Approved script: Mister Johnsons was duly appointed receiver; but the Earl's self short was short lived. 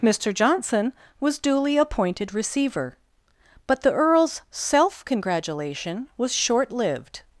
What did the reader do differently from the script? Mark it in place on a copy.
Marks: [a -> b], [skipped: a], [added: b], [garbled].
Mister [Johnsons -> Johnson] was duly appointed receiver; but the Earl's self [short -> congratulation] was short lived.